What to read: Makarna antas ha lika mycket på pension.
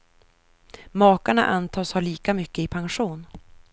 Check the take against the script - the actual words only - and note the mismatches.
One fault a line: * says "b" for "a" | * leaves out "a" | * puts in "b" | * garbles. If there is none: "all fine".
* says "i" for "på"